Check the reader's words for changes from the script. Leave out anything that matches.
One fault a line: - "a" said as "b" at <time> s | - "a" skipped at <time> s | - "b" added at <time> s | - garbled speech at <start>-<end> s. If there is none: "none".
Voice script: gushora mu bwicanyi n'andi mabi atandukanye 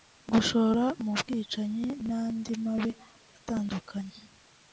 none